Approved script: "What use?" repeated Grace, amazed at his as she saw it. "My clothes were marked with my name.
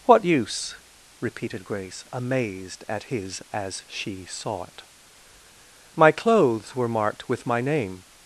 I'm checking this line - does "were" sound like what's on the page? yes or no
yes